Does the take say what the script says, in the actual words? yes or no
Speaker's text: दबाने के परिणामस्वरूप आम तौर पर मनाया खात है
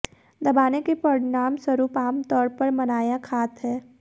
yes